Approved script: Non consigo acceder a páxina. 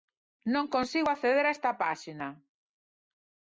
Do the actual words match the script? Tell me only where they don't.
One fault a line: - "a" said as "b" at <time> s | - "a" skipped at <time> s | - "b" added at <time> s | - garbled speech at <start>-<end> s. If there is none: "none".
- "esta" added at 1.6 s